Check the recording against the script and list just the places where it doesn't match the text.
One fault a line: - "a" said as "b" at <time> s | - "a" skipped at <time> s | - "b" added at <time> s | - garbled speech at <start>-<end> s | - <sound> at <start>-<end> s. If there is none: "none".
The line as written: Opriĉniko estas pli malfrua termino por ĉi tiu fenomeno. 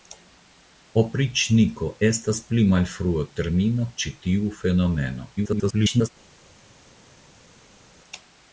- "por" skipped at 3.9 s
- garbled speech at 5.4-6.1 s